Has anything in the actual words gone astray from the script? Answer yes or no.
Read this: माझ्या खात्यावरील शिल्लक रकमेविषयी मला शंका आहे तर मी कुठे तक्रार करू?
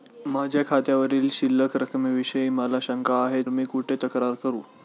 yes